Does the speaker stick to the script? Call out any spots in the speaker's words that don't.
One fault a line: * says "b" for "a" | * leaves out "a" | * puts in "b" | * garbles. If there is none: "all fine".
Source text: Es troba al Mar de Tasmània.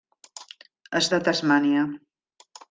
* leaves out "troba al Mar"